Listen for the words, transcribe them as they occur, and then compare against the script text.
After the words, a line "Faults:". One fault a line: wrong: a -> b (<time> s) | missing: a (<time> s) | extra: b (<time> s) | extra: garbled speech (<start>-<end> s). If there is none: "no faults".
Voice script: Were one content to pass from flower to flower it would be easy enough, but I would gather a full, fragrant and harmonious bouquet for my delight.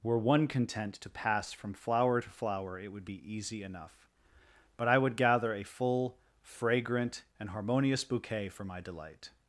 Were one content to pass from flower to flower it would be easy enough, but I would gather a full, fragrant and harmonious bouquet for my delight.
Faults:
no faults